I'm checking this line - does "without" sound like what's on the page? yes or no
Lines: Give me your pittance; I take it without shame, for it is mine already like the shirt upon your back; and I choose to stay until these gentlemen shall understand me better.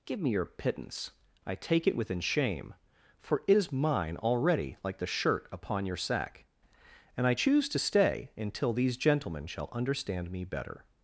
no